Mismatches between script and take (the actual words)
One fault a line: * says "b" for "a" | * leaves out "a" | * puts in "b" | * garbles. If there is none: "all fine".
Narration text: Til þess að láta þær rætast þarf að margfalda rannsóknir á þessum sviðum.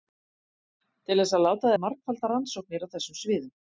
* leaves out "þær rætast þarf"